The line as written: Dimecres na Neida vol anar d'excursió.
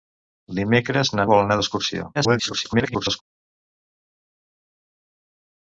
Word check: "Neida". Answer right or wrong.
wrong